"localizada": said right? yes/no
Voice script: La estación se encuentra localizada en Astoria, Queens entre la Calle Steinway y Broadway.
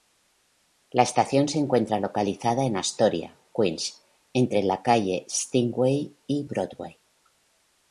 yes